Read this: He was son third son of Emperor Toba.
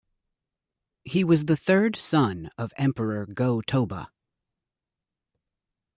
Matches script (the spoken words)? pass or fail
fail